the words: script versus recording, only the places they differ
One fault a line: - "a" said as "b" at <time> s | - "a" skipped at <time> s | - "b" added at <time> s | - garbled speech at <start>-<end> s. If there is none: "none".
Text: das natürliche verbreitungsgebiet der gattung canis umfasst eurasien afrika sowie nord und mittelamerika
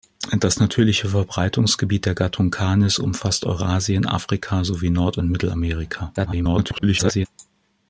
- garbled speech at 6.2-7.3 s